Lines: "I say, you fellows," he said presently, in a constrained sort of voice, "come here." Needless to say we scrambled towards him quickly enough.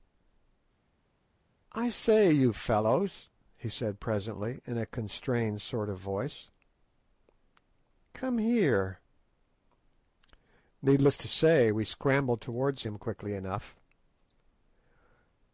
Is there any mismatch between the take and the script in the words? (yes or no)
no